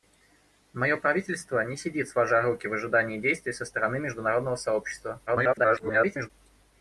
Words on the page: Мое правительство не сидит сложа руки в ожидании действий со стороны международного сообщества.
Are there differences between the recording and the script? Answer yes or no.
yes